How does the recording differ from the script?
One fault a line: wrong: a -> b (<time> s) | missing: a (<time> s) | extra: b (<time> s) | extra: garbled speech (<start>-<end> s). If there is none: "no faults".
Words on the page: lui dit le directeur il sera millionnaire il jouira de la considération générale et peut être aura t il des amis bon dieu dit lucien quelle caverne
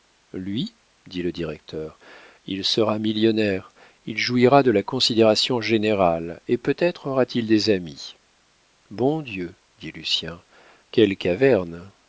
no faults